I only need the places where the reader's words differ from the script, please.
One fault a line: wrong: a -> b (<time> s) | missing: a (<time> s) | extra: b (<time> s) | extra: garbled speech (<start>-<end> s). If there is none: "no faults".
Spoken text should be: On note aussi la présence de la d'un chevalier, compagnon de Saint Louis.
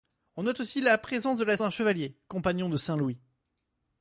no faults